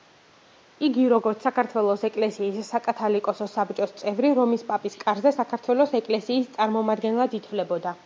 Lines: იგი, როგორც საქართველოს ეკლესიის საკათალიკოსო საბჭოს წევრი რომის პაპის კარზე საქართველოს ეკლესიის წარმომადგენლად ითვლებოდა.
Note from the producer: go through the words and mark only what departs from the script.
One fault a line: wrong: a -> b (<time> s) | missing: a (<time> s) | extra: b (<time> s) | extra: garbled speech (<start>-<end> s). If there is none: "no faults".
no faults